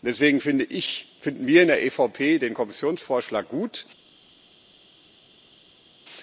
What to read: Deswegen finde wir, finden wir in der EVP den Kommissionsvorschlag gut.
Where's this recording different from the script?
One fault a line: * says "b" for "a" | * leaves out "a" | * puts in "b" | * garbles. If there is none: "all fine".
* says "ich" for "wir"